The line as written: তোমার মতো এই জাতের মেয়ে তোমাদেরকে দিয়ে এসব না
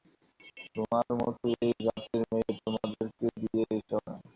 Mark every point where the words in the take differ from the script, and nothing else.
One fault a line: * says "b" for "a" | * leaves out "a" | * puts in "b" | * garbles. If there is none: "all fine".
all fine